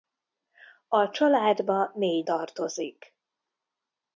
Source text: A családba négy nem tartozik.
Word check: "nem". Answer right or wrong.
wrong